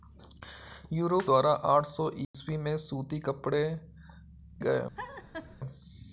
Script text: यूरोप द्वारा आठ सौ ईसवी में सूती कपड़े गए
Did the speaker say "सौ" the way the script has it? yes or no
yes